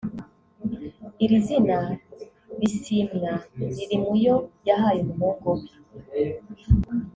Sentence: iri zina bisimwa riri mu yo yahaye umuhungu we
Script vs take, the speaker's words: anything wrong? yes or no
no